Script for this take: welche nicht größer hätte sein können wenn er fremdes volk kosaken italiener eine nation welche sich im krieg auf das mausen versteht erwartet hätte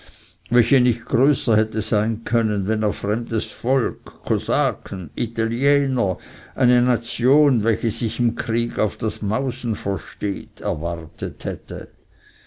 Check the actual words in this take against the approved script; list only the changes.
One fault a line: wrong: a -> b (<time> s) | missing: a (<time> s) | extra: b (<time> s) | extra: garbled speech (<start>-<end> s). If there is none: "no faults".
no faults